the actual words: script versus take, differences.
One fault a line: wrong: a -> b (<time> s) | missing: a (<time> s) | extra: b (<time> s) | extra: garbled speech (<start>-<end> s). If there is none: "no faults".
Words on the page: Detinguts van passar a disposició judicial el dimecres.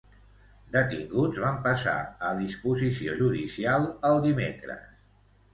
no faults